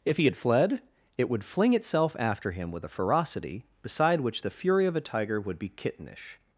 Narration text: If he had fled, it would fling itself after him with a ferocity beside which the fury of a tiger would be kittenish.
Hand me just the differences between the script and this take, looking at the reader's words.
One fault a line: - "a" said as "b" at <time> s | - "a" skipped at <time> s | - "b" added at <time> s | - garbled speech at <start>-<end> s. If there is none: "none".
none